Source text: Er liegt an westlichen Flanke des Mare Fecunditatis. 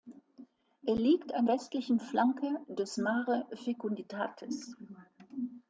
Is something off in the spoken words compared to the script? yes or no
no